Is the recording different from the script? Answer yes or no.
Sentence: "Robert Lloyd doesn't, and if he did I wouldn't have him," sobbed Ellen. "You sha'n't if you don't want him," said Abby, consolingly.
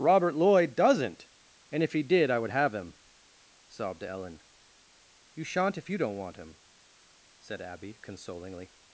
yes